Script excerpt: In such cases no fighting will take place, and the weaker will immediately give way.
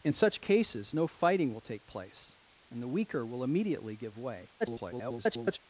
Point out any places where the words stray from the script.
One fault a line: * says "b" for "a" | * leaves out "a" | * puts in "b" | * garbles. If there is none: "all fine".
* garbles